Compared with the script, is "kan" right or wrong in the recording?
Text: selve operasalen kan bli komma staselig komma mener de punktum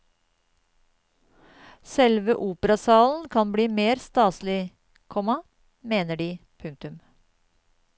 right